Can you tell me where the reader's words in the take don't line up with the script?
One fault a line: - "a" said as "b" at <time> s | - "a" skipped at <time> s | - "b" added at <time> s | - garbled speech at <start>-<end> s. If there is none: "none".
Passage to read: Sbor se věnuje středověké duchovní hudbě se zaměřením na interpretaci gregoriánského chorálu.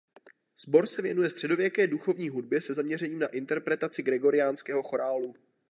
none